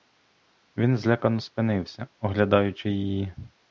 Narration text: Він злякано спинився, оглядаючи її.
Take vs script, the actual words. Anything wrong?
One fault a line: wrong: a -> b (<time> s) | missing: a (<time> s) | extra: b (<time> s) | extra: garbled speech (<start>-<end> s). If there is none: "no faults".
no faults